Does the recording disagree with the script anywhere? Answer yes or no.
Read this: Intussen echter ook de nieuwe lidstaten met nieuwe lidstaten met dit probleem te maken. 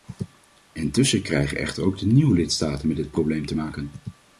yes